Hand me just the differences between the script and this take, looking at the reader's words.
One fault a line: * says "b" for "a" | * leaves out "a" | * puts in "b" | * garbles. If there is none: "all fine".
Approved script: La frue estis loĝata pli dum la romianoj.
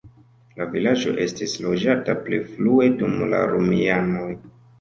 * says "vilaĝo" for "frue"
* puts in "frue"